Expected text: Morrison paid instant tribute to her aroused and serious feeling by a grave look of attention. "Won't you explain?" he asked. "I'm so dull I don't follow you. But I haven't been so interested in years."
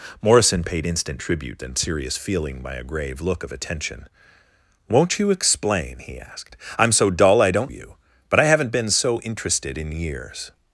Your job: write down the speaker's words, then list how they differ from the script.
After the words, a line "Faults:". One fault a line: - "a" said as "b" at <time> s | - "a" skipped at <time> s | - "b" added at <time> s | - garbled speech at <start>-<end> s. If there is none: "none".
Morrison paid instant tribute and serious feeling by a grave look of attention. "Won't you explain?" he asked. "I'm so dull I don't you. But I haven't been so interested in years."
Faults:
- "to her aroused" skipped at 1.6 s
- "follow" skipped at 7.7 s